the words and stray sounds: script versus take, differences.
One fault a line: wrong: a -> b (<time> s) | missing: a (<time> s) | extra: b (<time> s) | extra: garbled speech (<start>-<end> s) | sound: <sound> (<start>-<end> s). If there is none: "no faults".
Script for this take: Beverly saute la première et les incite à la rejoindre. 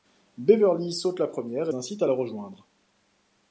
missing: les (1.7 s)